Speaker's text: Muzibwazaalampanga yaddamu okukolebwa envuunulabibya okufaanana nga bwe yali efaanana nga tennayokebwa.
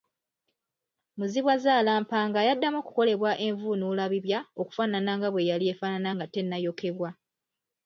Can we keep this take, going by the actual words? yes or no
yes